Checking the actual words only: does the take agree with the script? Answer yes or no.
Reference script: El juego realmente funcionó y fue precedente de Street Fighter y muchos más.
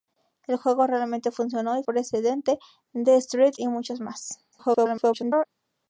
no